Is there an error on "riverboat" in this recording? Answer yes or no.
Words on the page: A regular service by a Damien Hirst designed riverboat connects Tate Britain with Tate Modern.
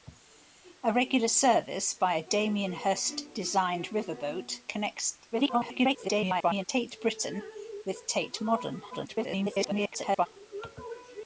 no